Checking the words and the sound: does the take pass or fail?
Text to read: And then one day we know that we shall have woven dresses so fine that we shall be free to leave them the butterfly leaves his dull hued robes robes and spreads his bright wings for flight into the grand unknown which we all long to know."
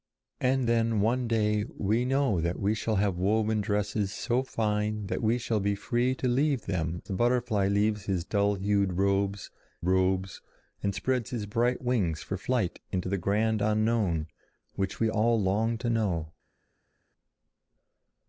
pass